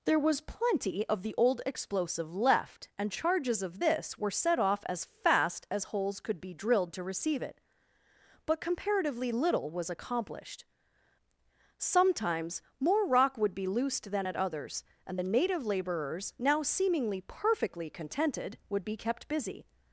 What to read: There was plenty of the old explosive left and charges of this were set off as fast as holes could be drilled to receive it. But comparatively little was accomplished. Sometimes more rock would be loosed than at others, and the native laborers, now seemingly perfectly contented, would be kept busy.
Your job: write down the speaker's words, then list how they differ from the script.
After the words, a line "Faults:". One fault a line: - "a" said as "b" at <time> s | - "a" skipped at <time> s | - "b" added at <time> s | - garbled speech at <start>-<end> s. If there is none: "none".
There was plenty of the old explosive left and charges of this were set off as fast as holes could be drilled to receive it. But comparatively little was accomplished. Sometimes more rock would be loosed than at others, and the native laborers, now seemingly perfectly contented, would be kept busy.
Faults:
none